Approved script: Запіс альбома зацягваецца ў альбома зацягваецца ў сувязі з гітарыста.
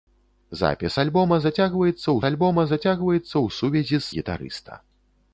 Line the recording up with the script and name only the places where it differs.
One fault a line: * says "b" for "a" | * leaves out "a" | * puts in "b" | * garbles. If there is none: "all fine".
all fine